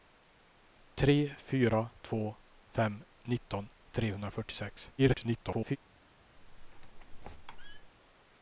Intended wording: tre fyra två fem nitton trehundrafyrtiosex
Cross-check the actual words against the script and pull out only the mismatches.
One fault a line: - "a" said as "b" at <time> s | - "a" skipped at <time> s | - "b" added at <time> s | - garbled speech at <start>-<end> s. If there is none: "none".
- garbled speech at 5.0-5.8 s